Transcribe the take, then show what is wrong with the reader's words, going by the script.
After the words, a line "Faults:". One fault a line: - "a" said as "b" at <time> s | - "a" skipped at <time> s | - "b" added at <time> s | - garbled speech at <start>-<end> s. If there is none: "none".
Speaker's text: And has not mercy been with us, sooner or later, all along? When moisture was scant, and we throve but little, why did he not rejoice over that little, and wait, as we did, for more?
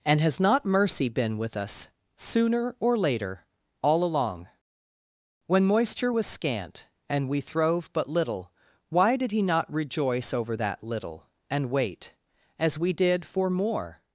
And has not mercy been with us, sooner or later, all along? When moisture was scant, and we throve but little, why did he not rejoice over that little, and wait, as we did, for more?
Faults:
none